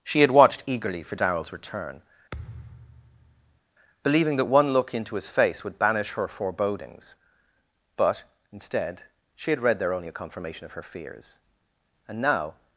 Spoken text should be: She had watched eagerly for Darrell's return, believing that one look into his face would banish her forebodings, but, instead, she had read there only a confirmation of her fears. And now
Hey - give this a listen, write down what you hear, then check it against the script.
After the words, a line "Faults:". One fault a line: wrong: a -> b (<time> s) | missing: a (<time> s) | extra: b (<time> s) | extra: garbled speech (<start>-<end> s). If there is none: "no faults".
She had watched eagerly for Darrell's return, believing that one look into his face would banish her forebodings, but, instead, she had read there only a confirmation of her fears. And now
Faults:
no faults